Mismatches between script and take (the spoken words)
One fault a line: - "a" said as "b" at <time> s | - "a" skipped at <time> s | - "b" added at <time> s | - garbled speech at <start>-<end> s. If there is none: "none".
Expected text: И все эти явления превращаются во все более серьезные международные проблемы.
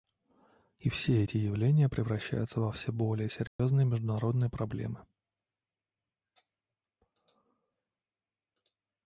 none